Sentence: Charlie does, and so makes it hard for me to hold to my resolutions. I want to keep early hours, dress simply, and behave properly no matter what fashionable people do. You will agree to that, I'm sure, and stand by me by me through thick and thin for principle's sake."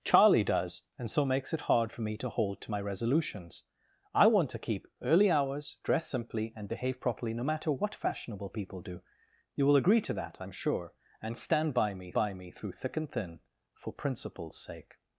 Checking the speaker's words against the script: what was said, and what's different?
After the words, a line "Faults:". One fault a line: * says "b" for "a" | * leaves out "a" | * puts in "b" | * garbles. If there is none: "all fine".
Charlie does, and so makes it hard for me to hold to my resolutions. I want to keep early hours, dress simply, and behave properly no matter what fashionable people do. You will agree to that, I'm sure, and stand by me by me through thick and thin for principle's sake."
Faults:
all fine